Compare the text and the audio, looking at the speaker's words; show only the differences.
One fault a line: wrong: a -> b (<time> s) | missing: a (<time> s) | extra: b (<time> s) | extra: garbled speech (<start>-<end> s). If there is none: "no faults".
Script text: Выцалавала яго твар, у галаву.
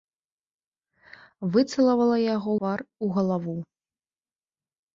no faults